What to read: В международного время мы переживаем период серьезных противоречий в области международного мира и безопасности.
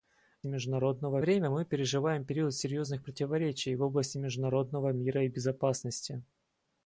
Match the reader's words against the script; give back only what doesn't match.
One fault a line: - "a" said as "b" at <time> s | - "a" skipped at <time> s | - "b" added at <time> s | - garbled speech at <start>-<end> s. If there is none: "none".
none